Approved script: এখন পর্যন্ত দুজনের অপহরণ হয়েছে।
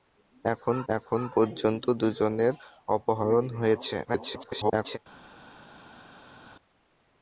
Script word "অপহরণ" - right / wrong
right